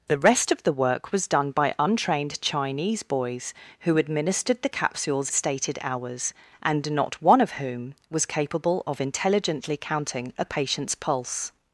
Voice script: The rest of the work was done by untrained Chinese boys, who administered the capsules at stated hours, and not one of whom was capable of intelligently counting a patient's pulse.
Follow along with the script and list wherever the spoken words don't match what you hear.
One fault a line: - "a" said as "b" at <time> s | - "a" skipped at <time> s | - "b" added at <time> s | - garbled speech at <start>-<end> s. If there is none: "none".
- "at" skipped at 5.3 s